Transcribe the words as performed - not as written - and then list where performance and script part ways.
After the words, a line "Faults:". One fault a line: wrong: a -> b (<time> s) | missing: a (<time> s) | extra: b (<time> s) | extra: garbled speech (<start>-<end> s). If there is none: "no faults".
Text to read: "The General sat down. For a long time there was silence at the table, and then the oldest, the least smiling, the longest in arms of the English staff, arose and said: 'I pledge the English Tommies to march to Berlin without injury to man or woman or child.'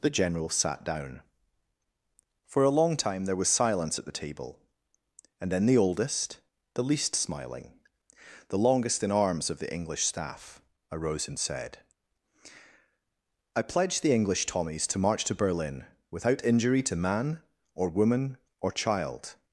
"The General sat down. For a long time there was silence at the table, and then the oldest, the least smiling, the longest in arms of the English staff, arose and said: 'I pledge the English Tommies to march to Berlin without injury to man or woman or child.'
Faults:
no faults